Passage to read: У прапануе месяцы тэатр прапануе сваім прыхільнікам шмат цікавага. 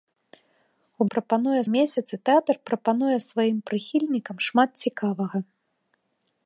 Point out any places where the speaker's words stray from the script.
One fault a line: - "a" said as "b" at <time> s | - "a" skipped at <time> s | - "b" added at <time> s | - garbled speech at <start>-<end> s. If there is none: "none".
none